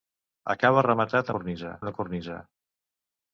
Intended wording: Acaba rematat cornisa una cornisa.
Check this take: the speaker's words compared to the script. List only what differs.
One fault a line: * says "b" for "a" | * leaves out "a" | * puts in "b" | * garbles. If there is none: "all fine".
all fine